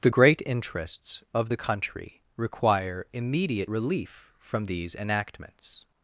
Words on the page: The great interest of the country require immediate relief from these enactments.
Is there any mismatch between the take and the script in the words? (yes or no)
yes